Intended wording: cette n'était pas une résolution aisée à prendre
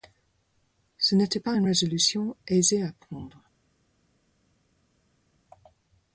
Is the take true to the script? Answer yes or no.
no